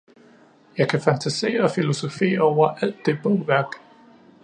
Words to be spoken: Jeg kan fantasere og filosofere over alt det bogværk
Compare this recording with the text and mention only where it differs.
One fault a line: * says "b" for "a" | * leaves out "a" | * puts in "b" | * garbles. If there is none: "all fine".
all fine